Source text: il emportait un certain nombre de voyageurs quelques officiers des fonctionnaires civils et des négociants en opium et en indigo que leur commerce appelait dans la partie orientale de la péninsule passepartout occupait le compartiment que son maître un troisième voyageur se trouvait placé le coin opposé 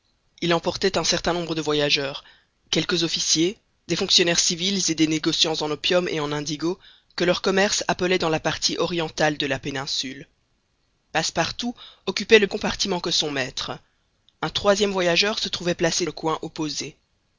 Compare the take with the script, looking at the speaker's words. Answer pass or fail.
pass